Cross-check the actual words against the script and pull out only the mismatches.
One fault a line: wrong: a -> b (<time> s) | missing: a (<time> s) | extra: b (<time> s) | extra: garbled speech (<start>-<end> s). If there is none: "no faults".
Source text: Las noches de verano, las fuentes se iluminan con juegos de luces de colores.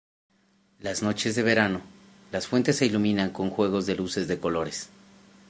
no faults